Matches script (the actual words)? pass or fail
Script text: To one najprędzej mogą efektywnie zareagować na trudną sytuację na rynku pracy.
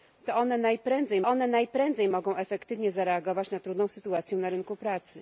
fail